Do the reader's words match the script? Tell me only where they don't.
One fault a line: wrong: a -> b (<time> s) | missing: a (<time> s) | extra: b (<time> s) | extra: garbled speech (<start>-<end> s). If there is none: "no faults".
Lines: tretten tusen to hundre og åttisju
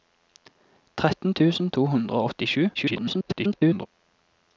extra: garbled speech (2.7-3.9 s)